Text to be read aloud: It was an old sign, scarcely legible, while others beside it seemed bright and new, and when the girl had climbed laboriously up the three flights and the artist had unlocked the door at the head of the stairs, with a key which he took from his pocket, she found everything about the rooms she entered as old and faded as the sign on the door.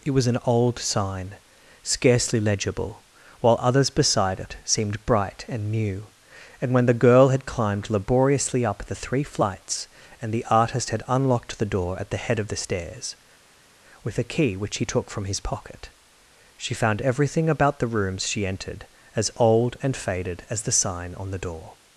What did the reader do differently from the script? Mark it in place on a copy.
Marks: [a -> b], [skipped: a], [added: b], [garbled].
It was an old sign, scarcely legible, while others beside it seemed bright and new, and when the girl had climbed laboriously up the three flights and the artist had unlocked the door at the head of the stairs, with a key which he took from his pocket, she found everything about the rooms she entered as old and faded as the sign on the door.